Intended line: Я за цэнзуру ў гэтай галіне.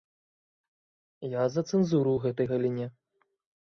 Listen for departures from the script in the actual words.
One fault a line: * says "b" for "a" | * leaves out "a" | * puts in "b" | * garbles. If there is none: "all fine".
all fine